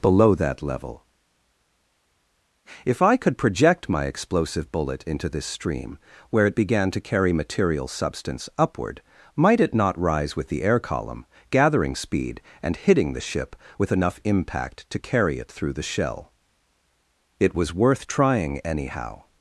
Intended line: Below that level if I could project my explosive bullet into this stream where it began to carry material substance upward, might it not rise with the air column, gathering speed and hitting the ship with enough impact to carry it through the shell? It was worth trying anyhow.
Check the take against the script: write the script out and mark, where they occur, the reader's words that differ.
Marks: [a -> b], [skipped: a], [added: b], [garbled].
Below that level if I could project my explosive bullet into this stream where it began to carry material substance upward, might it not rise with the air column, gathering speed and hitting the ship with enough impact to carry it through the shell? It was worth trying anyhow.